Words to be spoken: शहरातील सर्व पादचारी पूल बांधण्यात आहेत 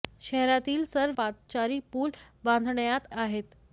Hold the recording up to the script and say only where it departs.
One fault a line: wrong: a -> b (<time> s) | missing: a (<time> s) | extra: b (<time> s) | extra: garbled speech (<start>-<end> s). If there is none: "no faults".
no faults